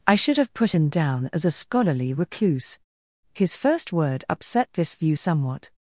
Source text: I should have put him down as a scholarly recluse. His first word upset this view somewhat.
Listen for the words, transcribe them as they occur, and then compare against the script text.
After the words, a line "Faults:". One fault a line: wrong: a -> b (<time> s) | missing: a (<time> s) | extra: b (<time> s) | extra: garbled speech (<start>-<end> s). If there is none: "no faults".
I should have put him down as a scholarly recluse. His first word upset this view somewhat.
Faults:
no faults